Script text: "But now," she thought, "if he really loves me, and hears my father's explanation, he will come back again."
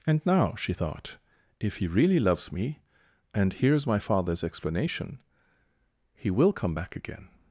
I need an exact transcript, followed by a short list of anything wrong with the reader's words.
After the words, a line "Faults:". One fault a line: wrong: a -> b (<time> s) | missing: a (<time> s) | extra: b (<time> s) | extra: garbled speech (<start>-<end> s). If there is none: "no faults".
"And now," she thought, "if he really loves me, and hears my father's explanation, he will come back again."
Faults:
wrong: But -> And (0.1 s)